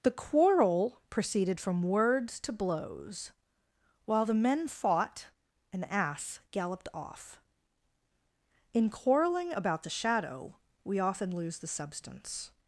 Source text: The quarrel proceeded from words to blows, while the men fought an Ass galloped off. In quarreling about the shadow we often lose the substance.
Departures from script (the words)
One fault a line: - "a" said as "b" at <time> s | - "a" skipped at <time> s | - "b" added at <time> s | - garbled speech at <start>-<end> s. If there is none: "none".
none